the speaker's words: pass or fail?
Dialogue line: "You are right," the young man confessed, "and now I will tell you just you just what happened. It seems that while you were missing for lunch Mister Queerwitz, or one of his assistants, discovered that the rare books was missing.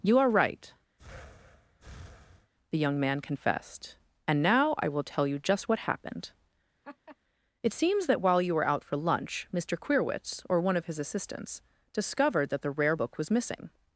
fail